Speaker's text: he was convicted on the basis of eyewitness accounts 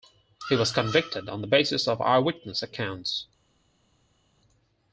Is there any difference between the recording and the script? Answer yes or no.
no